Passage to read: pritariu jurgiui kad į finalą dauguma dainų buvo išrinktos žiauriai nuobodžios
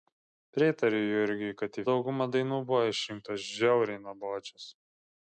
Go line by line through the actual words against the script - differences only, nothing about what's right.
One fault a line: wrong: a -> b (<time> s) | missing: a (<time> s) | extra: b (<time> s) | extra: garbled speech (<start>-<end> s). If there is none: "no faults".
missing: finalą (1.9 s)